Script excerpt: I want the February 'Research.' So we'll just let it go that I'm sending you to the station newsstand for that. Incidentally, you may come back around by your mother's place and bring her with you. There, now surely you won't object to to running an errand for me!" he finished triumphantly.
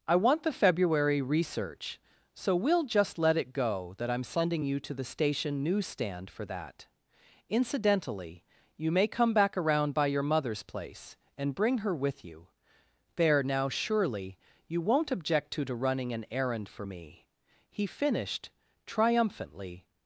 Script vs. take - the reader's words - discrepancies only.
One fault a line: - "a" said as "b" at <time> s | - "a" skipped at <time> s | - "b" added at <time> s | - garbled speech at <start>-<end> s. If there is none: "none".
none